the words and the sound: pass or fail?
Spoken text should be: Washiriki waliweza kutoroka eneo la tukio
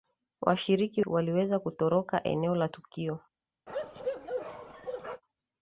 fail